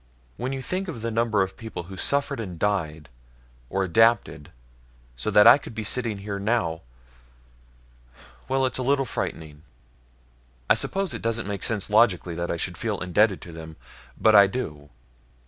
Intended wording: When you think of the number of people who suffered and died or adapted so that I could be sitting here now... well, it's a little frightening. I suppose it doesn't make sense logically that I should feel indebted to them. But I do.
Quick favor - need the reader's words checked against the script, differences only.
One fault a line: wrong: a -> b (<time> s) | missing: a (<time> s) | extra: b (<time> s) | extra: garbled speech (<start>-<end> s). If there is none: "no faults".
no faults